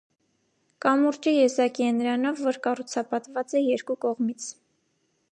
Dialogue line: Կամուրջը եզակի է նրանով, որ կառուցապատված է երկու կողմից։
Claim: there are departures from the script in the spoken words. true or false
false